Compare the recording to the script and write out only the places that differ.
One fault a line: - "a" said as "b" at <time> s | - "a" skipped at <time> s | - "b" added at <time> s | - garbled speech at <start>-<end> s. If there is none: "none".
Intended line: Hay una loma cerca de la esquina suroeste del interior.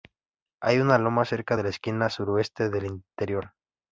none